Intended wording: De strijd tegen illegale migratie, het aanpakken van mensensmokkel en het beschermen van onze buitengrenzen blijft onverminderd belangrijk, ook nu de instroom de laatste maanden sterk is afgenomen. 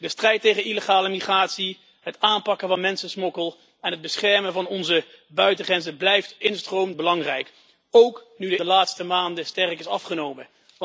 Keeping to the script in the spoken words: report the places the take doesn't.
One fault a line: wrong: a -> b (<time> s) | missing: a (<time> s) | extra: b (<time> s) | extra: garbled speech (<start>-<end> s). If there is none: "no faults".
wrong: onverminderd -> instroom (6.4 s)
missing: instroom (8.6 s)